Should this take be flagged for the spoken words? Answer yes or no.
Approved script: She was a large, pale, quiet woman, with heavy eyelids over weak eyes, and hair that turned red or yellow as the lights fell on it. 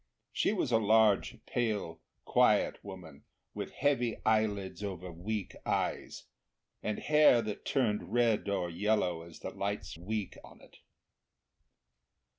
yes